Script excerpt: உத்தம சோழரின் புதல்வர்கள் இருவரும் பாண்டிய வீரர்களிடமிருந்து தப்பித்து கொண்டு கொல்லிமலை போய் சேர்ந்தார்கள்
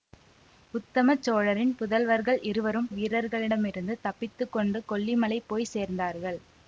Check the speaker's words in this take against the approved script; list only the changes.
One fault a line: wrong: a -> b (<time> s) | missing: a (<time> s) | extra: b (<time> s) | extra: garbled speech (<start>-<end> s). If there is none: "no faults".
missing: பாண்டிய (2.9 s)